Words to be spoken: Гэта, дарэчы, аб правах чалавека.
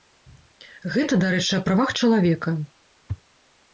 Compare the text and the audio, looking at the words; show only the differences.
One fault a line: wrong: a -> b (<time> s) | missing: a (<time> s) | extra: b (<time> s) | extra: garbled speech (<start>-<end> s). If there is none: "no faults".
no faults